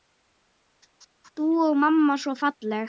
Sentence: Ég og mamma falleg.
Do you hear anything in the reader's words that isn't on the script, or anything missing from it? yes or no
yes